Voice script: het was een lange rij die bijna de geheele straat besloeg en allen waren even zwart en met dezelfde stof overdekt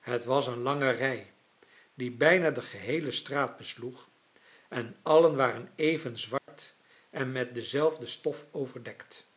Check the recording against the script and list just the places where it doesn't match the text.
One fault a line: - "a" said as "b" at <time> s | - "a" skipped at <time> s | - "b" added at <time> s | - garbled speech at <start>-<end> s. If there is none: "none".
none